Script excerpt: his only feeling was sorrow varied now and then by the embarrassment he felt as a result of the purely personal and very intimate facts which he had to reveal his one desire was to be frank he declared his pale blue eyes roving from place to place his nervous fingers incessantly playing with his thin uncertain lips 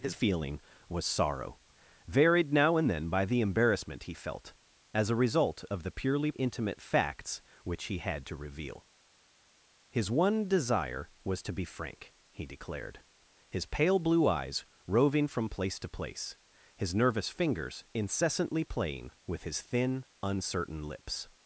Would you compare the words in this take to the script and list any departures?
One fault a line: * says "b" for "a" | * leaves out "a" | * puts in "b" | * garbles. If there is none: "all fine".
* leaves out "only"
* leaves out "personal and very"